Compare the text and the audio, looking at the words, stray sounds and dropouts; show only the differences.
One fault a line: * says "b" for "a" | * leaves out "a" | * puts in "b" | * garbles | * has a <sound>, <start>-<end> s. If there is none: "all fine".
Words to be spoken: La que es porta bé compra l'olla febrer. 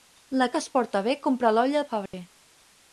* has a dropout, 2.1-2.1 s